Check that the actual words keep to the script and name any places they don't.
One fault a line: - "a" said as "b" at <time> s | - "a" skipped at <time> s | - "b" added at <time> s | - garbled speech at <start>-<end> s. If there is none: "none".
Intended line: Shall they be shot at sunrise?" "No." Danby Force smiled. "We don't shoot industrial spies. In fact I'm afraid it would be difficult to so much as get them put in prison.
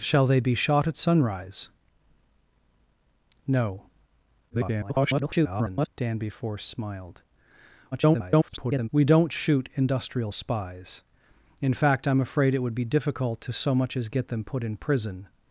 - garbled speech at 4.5-5.9 s
- garbled speech at 7.9-8.9 s